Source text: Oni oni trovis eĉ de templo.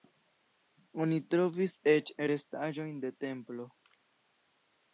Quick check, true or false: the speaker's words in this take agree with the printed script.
false